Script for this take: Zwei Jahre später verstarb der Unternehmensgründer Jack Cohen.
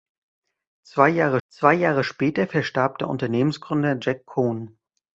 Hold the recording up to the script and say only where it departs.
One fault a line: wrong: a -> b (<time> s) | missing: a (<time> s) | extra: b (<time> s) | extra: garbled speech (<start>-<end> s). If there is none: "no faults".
extra: zwei Jahre (1.5 s)